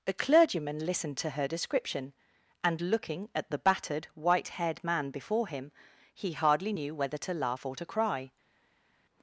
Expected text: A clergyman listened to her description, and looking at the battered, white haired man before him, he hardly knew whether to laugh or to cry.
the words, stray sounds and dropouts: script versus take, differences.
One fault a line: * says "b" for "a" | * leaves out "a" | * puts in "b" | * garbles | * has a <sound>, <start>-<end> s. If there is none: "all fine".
all fine